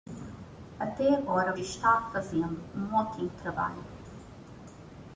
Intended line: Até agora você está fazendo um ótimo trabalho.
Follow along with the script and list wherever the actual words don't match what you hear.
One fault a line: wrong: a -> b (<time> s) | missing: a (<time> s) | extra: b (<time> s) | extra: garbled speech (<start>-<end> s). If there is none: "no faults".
missing: você (1.5 s)